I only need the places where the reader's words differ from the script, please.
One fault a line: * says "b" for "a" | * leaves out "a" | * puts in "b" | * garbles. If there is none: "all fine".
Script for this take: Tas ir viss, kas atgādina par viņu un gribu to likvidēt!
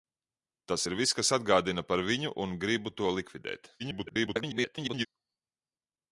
* garbles